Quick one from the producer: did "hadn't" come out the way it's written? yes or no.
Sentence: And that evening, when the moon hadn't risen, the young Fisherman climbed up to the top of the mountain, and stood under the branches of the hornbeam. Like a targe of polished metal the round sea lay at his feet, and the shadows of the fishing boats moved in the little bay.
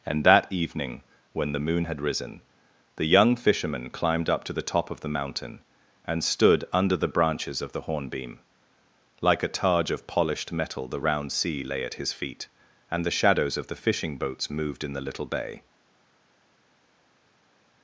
no